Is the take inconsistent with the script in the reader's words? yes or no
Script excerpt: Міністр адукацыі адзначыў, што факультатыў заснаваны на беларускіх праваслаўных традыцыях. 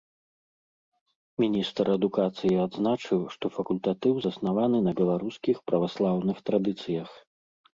no